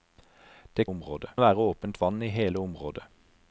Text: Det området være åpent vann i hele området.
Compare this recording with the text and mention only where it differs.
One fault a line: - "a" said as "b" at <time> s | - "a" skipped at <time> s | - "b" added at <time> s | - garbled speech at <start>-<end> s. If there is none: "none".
none